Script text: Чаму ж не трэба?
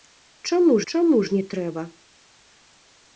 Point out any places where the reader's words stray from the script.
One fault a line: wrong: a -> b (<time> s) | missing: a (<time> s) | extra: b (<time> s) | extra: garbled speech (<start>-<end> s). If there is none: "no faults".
extra: чаму (0.9 s)